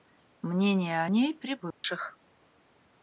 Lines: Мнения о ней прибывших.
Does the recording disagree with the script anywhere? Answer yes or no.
no